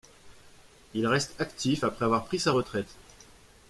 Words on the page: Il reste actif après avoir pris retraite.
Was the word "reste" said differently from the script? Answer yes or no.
no